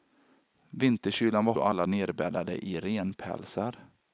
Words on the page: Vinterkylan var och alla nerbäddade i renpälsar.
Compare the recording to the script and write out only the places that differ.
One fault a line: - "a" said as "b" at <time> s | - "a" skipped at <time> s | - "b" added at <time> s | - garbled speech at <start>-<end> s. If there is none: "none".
none